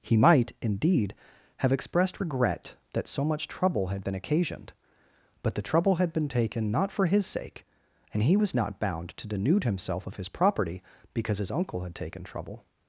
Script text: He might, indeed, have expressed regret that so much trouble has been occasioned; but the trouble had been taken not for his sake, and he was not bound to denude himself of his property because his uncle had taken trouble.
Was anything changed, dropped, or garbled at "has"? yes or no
yes